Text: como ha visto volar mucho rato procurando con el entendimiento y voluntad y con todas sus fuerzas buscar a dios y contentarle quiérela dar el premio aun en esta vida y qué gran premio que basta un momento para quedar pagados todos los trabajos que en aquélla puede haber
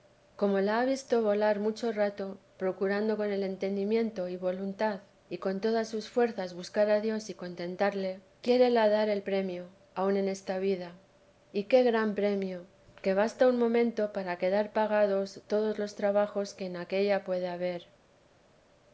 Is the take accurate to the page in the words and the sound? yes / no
no